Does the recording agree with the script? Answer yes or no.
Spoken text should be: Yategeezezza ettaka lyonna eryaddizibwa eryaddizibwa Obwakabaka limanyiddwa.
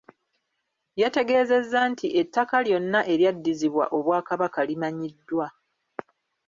no